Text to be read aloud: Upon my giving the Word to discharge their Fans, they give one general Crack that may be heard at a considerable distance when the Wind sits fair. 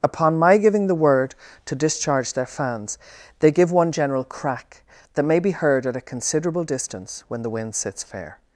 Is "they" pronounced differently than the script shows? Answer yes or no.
no